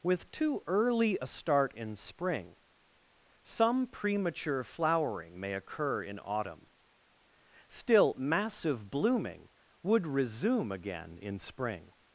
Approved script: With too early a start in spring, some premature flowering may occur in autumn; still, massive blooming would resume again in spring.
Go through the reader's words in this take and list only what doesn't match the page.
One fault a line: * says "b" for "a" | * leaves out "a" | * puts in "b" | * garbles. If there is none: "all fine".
all fine